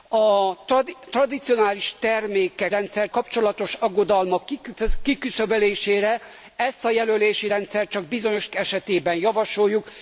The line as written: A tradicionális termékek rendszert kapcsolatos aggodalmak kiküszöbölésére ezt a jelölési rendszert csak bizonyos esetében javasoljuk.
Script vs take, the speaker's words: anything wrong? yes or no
no